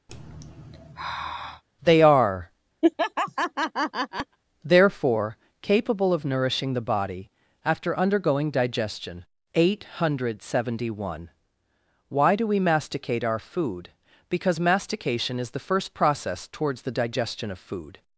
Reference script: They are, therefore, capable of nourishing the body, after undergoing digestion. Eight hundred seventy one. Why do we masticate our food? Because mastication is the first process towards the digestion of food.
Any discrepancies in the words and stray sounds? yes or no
yes